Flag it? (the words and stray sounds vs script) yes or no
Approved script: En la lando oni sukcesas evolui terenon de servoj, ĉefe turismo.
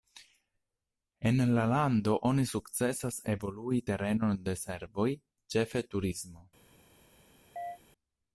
yes